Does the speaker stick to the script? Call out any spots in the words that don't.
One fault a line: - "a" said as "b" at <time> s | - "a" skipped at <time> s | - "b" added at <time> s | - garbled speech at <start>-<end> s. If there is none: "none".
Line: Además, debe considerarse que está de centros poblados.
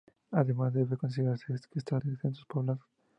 none